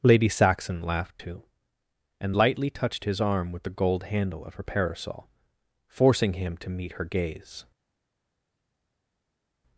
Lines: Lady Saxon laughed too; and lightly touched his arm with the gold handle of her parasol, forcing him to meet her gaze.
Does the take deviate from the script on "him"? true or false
false